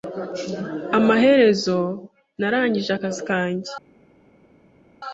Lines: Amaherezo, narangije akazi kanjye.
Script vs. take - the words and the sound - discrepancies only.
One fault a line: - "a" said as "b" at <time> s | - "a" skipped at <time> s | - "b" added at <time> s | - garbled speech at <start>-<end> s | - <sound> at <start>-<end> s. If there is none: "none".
none